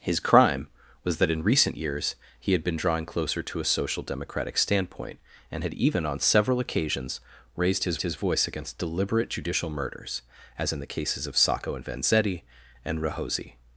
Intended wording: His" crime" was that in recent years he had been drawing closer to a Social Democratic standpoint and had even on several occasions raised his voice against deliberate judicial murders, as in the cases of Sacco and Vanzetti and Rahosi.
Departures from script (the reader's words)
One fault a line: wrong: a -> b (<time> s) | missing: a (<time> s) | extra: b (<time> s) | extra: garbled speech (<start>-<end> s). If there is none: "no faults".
extra: his (8.0 s)